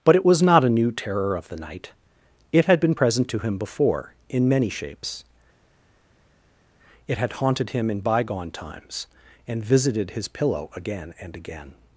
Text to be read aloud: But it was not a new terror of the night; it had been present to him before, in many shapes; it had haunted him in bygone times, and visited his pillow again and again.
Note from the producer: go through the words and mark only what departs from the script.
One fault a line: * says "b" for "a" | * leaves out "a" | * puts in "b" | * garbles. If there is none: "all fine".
all fine